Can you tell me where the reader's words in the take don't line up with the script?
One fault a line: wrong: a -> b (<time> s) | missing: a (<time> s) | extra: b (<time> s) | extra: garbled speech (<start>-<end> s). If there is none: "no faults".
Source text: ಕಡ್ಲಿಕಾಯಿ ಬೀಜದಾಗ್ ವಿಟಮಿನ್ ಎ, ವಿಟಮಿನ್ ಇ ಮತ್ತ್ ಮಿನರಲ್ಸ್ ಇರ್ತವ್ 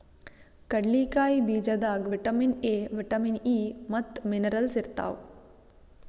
no faults